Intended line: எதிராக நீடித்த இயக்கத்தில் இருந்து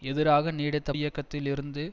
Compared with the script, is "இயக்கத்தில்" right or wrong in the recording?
right